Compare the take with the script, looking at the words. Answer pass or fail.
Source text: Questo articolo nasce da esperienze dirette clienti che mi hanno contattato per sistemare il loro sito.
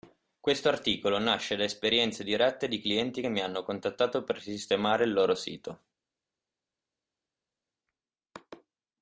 fail